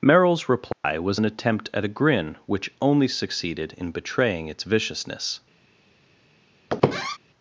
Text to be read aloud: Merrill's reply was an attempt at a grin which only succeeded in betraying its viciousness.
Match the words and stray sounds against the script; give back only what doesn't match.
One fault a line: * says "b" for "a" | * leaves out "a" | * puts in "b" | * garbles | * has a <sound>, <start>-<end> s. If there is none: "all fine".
* has a dropout, 0.7-0.8 s
* has a squeak, 6.7-7.2 s